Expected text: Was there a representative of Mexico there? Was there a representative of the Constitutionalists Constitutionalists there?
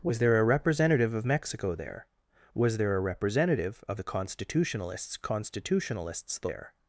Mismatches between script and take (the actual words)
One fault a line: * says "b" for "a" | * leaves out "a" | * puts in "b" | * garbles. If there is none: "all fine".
all fine